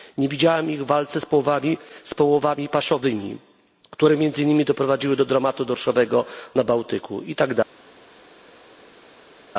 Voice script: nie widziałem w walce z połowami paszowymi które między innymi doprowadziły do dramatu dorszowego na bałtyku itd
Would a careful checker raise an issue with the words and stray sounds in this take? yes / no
yes